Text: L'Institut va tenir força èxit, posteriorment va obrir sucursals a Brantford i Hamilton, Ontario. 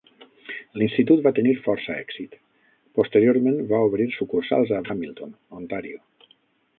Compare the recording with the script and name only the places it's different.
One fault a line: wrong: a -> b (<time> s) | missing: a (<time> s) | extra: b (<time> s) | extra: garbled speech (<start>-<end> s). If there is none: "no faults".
missing: Brantford (4.8 s)